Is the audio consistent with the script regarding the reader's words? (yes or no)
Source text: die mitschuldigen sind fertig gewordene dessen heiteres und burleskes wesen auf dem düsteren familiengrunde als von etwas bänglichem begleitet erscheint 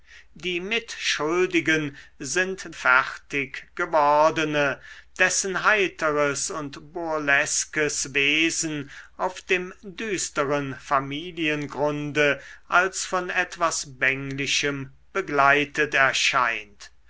yes